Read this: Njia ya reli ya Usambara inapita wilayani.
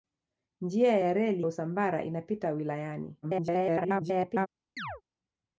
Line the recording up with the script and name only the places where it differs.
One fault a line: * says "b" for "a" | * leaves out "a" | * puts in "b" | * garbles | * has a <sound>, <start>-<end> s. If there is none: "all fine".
* leaves out "ya"
* garbles
* has a chirp, 4.8-5.0 s